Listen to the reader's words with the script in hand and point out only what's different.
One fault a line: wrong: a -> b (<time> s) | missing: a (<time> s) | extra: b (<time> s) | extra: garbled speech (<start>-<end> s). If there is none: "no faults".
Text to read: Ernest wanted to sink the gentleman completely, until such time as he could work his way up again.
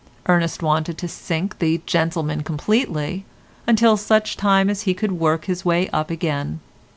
no faults